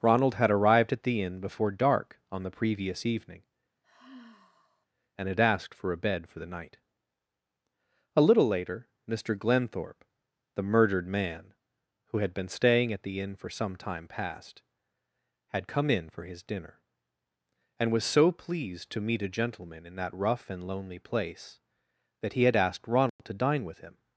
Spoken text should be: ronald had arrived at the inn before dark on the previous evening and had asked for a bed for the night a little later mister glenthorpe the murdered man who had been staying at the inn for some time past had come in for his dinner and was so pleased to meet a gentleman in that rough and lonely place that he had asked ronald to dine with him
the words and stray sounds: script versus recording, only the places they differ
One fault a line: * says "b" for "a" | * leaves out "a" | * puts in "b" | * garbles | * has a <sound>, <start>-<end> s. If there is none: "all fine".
* has a sigh, 3.8-4.9 s
* has a dropout, 23.1-23.2 s